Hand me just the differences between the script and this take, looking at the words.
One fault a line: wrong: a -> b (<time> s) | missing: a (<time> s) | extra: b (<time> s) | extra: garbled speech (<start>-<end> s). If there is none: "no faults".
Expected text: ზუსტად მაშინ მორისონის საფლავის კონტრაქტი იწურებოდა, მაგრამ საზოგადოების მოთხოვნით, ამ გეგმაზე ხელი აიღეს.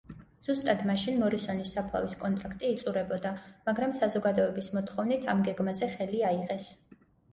no faults